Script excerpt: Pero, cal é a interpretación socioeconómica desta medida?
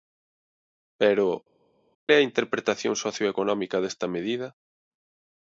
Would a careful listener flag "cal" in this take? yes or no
yes